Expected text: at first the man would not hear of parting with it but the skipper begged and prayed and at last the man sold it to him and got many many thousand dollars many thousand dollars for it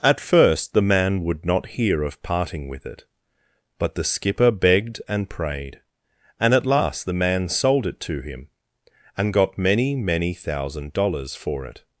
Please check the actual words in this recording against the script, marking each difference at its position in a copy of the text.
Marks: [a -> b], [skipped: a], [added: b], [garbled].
at first the man would not hear of parting with it but the skipper begged and prayed and at last the man sold it to him and got many many thousand dollars [skipped: many thousand dollars] for it